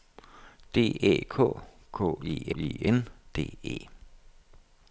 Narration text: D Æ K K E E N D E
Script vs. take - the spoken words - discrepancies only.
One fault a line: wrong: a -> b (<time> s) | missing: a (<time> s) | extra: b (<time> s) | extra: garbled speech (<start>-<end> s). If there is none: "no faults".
no faults